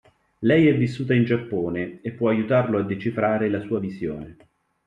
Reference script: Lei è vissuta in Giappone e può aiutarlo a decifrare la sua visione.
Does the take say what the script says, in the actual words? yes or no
yes